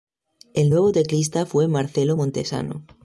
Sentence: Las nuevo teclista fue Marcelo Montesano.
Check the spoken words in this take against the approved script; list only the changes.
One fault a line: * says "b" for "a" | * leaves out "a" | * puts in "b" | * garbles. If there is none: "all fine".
* says "El" for "Las"